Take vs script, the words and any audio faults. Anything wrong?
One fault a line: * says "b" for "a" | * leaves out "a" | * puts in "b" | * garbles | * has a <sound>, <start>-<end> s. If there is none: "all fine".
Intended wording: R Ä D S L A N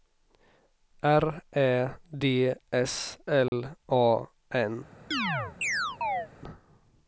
* has a dropout, 3.5-3.5 s
* has a chirp, 5.1-6.3 s